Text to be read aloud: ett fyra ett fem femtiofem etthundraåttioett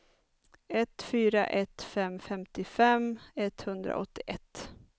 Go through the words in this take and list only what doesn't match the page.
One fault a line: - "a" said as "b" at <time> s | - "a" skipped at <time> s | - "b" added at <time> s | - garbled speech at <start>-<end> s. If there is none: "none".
none